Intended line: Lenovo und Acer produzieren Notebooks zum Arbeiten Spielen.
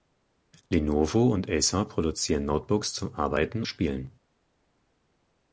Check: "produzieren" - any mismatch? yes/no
no